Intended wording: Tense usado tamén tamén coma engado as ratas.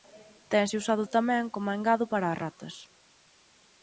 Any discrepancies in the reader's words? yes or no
yes